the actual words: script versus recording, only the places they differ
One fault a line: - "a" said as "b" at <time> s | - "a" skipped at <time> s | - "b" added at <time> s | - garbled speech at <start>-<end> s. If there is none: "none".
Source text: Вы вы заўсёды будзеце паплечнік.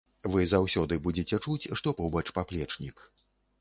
- "вы" skipped at 0.5 s
- "чуць што побач" added at 1.4 s